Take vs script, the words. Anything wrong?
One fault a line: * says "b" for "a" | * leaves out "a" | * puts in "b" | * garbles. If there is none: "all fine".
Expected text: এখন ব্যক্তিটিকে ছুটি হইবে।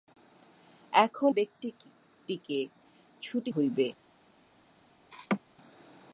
all fine